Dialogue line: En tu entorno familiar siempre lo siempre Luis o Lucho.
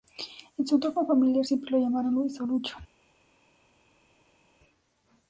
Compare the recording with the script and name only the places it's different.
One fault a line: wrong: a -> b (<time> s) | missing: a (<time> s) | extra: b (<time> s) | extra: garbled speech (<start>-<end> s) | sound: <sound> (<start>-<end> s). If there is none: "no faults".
wrong: tu -> su (0.7 s)
wrong: siempre -> llamaron (1.8 s)